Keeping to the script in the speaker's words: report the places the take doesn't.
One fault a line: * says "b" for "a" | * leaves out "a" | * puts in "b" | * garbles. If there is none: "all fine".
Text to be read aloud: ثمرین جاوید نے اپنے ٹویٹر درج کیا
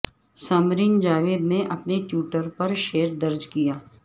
* puts in "پر شعر"